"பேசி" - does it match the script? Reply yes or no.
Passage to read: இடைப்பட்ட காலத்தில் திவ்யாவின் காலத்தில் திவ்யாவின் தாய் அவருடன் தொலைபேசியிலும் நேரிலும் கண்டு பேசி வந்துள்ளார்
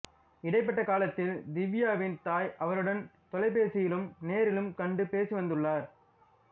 yes